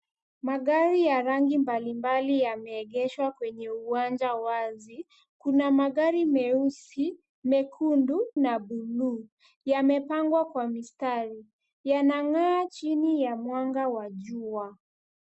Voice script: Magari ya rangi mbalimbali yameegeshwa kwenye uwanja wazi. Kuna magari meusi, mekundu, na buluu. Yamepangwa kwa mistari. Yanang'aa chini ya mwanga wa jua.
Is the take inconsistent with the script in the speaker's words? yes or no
no